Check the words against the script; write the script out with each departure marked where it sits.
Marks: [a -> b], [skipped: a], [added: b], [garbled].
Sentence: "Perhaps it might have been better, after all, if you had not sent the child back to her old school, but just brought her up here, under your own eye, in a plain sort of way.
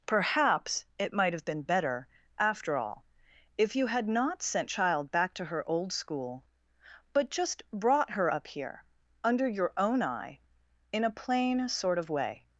"Perhaps it might have been better, after all, if you had not sent [skipped: the] child back to her old school, but just brought her up here, under your own eye, in a plain sort of way.